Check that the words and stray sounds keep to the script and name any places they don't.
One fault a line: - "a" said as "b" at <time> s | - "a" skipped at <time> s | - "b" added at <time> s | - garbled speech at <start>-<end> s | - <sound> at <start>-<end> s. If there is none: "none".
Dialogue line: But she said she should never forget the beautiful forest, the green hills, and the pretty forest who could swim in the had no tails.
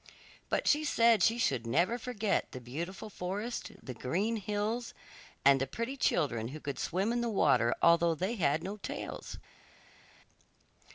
- "forest" said as "children" at 6.0 s
- "water although they" added at 7.3 s